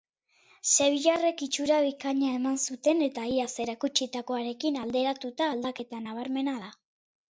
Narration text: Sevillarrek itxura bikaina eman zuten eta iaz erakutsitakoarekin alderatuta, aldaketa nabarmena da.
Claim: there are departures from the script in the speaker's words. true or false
false